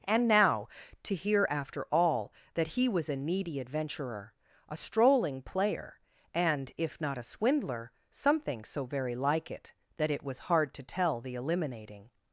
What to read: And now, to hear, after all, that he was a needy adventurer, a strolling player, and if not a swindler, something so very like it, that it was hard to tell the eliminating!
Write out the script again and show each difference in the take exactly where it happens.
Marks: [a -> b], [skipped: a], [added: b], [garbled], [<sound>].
And now, to hear, after all, that he was a needy adventurer, a strolling player, and if not a swindler, something so very like it, that it was hard to tell the eliminating!